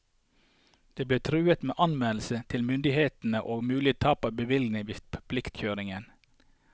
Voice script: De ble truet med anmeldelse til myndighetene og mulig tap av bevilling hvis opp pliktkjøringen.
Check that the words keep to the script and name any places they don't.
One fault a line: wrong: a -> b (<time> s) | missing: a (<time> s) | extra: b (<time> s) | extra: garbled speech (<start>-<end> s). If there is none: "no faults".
no faults